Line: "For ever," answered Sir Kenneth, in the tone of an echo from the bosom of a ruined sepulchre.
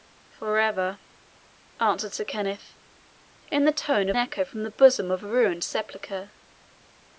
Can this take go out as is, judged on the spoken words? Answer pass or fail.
fail